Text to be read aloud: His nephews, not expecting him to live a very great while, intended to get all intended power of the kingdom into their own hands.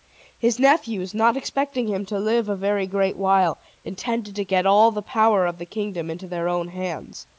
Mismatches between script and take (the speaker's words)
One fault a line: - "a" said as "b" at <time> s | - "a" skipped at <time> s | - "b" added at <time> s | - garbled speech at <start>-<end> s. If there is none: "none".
- "intended" said as "the" at 4.9 s